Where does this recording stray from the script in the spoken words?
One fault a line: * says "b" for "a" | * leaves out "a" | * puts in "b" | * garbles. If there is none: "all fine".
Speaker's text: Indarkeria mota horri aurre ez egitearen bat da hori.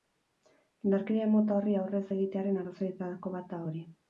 * puts in "arrazoietako"